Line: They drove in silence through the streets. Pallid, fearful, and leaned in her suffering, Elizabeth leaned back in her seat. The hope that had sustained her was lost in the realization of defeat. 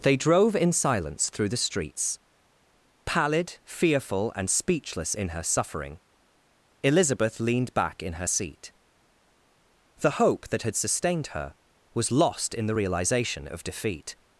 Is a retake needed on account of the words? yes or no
yes